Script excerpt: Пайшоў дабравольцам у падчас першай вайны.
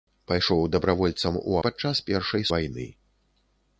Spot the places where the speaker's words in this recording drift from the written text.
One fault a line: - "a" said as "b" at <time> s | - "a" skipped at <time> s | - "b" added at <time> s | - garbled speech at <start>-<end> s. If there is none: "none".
none